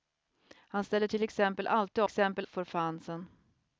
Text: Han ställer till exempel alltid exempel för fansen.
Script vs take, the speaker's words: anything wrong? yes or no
no